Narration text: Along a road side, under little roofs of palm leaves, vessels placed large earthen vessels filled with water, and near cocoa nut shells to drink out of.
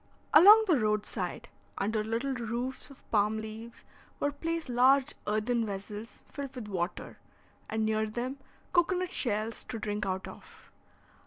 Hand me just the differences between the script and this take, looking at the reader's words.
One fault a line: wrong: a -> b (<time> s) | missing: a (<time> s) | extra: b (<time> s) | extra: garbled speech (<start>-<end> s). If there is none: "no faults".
wrong: a -> the (0.7 s)
wrong: vessels -> were (4.2 s)
extra: them (8.1 s)